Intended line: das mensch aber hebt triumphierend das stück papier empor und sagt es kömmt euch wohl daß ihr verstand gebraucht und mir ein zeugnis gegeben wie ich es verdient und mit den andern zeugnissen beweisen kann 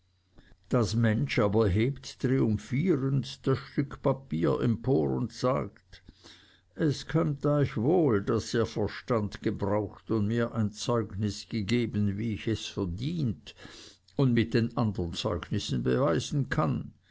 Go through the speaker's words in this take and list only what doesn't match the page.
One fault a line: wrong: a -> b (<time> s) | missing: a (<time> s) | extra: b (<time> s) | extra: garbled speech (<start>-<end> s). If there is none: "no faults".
no faults